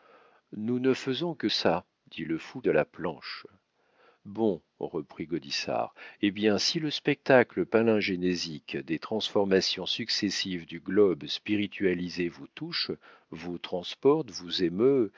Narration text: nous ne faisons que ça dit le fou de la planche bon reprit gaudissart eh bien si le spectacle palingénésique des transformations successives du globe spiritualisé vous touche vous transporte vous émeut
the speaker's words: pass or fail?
pass